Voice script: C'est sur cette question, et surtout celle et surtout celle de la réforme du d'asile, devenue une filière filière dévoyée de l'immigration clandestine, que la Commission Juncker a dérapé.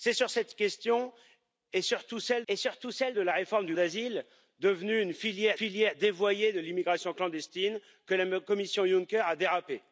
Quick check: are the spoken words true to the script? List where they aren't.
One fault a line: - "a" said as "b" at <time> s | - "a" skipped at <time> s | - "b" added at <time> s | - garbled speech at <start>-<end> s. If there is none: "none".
none